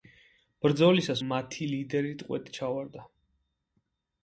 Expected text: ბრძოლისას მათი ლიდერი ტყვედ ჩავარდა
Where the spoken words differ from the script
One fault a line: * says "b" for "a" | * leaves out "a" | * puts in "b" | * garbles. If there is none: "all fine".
all fine